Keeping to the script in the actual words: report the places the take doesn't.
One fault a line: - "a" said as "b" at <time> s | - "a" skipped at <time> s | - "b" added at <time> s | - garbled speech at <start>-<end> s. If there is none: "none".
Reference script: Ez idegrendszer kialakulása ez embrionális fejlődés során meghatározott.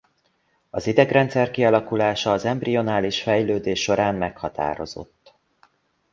- "Ez" said as "Az" at 0.7 s
- "ez" said as "az" at 2.3 s